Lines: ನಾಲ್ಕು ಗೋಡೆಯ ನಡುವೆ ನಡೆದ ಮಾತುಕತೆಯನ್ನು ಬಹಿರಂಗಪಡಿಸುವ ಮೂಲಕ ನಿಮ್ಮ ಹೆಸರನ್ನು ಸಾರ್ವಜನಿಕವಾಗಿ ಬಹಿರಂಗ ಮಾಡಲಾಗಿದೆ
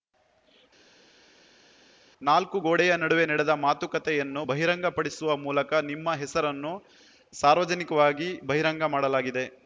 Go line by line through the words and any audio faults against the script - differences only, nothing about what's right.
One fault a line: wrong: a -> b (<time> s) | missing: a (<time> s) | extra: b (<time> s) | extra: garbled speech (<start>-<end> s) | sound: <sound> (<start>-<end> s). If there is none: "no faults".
no faults